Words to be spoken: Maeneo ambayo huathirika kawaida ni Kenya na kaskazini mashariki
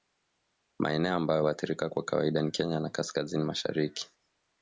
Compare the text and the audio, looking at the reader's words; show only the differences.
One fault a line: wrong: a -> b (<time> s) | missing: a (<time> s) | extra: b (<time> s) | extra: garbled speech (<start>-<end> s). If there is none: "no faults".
extra: kwa (1.9 s)